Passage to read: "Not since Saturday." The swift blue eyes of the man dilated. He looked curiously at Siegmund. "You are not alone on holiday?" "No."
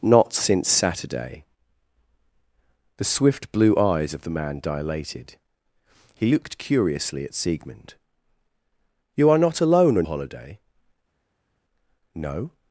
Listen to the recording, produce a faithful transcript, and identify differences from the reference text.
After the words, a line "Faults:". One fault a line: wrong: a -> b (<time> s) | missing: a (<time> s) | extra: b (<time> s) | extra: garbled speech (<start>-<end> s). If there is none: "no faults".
"Not since Saturday." The swift blue eyes of the man dilated. He looked curiously at Siegmund. "You are not alone on holiday?" "No."
Faults:
no faults